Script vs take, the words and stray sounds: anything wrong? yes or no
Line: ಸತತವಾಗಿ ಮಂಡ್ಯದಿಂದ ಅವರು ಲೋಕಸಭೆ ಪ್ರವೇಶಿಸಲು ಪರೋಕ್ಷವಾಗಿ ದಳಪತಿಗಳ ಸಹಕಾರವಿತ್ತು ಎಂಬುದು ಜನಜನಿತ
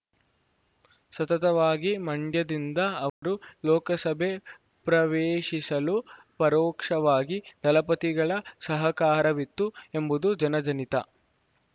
yes